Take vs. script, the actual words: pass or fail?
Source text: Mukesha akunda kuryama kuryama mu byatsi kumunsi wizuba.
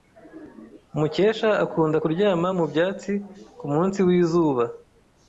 fail